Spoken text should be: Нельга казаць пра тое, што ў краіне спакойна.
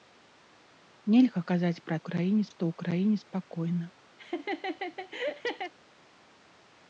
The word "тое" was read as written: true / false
false